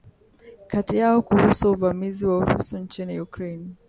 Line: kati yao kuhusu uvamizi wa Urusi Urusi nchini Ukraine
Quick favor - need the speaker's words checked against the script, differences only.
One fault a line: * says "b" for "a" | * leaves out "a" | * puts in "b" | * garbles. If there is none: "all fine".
* leaves out "Urusi"